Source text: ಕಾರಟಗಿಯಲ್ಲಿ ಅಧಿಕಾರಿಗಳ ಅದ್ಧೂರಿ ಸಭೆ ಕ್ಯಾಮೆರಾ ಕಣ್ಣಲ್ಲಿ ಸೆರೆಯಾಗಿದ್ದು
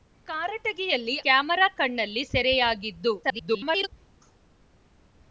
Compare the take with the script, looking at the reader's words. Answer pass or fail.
fail